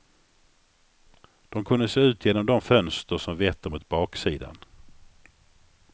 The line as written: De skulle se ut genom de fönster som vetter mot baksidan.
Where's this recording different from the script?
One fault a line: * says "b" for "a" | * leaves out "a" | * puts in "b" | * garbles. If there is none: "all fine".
* says "kunde" for "skulle"